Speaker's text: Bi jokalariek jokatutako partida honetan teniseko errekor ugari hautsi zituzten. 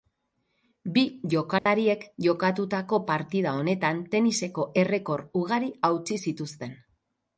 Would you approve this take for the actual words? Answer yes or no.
yes